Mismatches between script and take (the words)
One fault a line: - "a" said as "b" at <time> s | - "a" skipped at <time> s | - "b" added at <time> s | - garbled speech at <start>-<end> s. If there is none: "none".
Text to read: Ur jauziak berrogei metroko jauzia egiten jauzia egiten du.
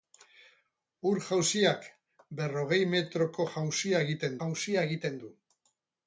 none